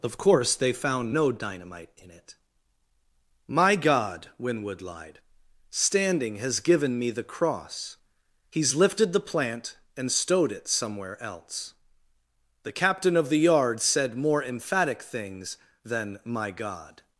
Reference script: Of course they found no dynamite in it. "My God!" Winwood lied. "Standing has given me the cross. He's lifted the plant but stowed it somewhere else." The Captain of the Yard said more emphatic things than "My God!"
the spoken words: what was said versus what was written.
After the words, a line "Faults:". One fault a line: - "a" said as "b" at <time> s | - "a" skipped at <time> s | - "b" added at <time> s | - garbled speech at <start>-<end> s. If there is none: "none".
Of course they found no dynamite in it. "My God!" Winwood lied. "Standing has given me the cross. He's lifted the plant and stowed it somewhere else." The Captain of the Yard said more emphatic things than "My God!"
Faults:
- "but" said as "and" at 10.0 s